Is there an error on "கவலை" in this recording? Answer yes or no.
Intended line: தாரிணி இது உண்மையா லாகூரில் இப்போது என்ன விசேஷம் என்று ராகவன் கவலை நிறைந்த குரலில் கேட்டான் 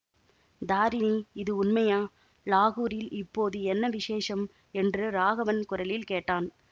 yes